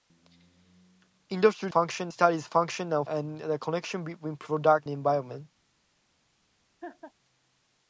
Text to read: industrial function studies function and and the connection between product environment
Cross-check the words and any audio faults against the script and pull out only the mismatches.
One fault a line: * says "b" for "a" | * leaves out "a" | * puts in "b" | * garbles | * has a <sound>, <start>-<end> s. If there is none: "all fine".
* has a laugh, 6.8-7.1 s